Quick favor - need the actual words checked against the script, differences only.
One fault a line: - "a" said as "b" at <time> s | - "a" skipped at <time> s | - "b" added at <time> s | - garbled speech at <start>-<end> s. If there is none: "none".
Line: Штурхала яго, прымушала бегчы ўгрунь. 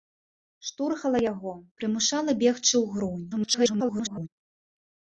- garbled speech at 3.3-4.3 s